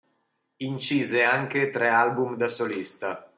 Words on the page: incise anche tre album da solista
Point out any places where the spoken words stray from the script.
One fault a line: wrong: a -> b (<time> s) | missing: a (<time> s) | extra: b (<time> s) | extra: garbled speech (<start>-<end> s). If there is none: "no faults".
no faults